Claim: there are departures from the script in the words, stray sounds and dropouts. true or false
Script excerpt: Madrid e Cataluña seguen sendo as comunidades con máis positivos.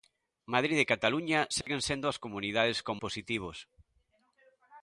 true